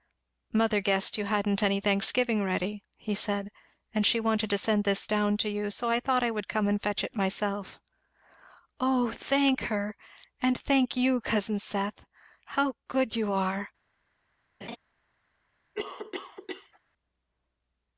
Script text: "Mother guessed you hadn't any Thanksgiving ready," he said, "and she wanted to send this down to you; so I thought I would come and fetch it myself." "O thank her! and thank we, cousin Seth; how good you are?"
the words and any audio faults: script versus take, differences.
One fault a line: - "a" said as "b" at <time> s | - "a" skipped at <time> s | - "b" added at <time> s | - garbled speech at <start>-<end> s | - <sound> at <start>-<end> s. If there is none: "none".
- "we" said as "you" at 11.0 s
- laugh at 14.6-14.8 s
- cough at 15.7-16.8 s